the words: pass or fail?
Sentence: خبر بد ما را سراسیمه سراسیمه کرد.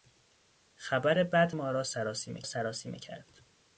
pass